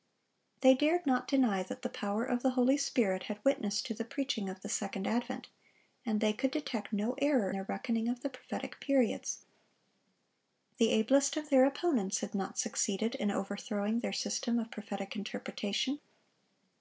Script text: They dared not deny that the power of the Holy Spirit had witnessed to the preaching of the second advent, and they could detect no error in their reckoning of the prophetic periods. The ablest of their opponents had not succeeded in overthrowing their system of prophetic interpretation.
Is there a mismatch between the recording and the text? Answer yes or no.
yes